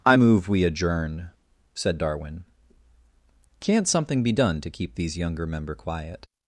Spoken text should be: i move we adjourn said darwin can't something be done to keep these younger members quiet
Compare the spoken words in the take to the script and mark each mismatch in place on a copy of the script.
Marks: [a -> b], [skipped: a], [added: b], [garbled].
i move we adjourn said darwin can't something be done to keep these younger [members -> member] quiet